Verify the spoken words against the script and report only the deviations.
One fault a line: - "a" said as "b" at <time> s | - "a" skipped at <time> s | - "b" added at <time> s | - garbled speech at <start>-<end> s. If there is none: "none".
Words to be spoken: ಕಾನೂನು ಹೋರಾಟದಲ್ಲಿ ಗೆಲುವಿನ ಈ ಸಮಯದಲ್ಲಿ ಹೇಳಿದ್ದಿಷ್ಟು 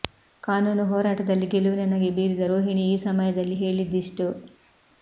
- "ನಗೆ ಬೀರಿದ ರೋಹಿಣಿ" added at 1.9 s